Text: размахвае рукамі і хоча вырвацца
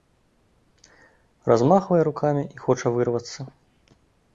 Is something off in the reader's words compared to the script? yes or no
no